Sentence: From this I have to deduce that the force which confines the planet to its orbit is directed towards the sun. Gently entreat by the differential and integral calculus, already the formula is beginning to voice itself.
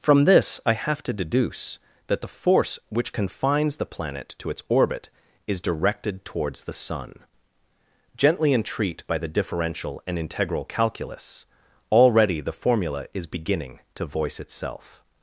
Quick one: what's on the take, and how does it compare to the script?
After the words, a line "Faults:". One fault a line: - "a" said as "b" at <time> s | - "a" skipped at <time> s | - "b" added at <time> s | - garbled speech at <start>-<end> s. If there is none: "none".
From this I have to deduce that the force which confines the planet to its orbit is directed towards the sun. Gently entreat by the differential and integral calculus, already the formula is beginning to voice itself.
Faults:
none